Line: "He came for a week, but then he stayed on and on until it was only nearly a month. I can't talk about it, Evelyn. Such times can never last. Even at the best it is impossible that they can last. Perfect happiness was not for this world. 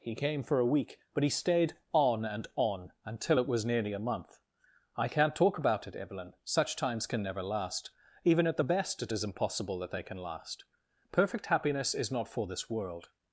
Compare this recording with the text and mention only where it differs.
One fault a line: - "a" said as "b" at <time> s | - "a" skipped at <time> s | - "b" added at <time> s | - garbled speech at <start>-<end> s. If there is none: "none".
- "then" skipped at 1.2 s
- "only" skipped at 3.6 s
- "was" said as "is" at 11.9 s